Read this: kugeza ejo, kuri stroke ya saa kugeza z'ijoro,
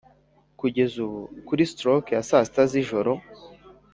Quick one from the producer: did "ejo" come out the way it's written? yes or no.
no